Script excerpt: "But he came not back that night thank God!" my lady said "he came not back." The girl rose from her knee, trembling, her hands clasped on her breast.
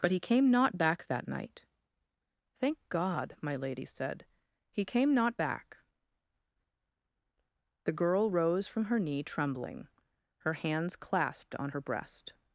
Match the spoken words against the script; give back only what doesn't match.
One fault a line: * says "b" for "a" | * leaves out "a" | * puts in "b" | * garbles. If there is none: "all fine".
all fine